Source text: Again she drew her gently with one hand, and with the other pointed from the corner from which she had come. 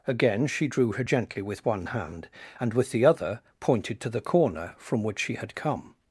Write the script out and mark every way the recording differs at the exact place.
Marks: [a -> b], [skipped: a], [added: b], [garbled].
Again she drew her gently with one hand, and with the other pointed [from -> to] the corner from which she had come.